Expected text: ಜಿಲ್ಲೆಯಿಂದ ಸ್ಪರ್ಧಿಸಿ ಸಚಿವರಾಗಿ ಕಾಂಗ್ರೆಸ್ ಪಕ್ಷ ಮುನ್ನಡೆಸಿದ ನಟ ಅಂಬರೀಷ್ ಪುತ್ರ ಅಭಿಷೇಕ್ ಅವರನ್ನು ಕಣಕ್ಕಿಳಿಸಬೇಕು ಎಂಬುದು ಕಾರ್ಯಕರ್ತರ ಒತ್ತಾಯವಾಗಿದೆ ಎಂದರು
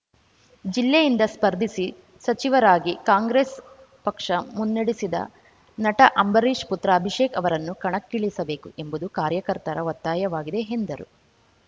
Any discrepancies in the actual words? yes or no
no